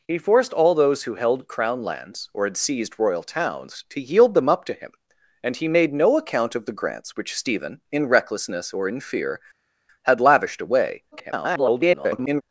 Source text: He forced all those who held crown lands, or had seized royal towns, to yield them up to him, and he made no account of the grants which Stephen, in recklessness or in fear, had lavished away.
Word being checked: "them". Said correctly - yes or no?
yes